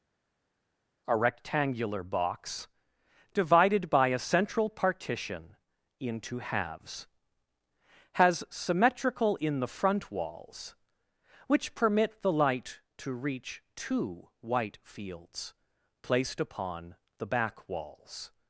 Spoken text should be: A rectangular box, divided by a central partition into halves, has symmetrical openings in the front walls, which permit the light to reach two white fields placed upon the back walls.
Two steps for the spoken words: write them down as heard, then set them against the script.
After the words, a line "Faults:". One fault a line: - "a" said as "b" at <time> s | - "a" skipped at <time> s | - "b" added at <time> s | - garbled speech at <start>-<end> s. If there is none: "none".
A rectangular box, divided by a central partition into halves, has symmetrical in the front walls, which permit the light to reach two white fields placed upon the back walls.
Faults:
- "openings" skipped at 9.4 s